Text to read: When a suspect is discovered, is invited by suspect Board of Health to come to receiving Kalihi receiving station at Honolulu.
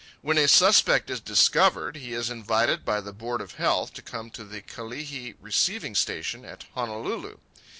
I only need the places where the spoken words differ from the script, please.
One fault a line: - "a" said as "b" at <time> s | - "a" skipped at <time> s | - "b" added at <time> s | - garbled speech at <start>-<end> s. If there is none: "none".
- "he" added at 1.9 s
- "suspect" said as "the" at 3.0 s
- "receiving" said as "the" at 4.4 s